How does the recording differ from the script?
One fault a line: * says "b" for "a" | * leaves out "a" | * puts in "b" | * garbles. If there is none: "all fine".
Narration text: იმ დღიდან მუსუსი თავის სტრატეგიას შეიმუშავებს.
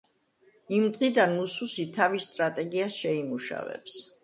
all fine